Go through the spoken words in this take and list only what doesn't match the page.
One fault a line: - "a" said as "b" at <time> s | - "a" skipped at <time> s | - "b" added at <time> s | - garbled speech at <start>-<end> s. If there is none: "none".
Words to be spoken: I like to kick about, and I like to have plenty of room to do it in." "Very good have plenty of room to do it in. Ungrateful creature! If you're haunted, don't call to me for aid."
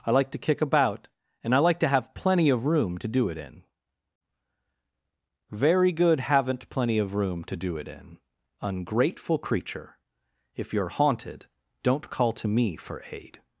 - "have" said as "haven't" at 6.2 s